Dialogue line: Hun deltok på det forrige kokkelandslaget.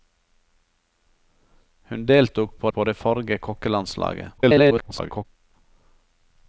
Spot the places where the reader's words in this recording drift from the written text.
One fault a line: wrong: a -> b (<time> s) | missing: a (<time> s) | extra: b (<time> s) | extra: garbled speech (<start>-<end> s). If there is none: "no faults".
extra: på (2.7 s)
extra: garbled speech (4.4-5.3 s)